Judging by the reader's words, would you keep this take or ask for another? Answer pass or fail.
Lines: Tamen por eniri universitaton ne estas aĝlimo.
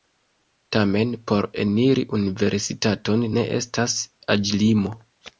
pass